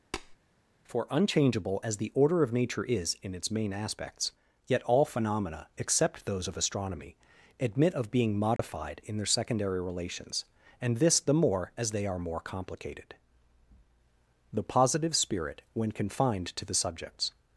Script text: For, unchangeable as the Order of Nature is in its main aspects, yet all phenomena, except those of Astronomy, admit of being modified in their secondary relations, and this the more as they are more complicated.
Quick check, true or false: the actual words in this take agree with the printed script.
false